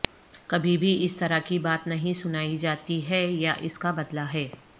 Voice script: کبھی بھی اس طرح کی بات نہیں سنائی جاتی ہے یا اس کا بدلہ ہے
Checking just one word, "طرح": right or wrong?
right